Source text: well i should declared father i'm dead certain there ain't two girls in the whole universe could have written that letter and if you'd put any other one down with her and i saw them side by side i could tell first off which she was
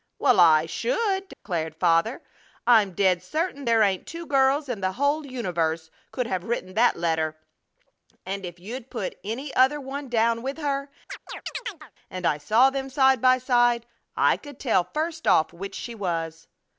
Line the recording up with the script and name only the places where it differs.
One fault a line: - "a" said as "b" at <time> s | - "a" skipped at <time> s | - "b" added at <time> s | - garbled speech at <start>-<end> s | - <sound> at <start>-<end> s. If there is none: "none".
- dropout at 1.3-1.5 s
- chirp at 11.1-11.9 s